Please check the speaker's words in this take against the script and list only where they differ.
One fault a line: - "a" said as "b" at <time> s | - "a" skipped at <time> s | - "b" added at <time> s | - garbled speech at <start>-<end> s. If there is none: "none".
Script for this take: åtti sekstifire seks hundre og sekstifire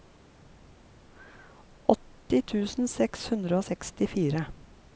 - "sekstifire" said as "tusen" at 2.5 s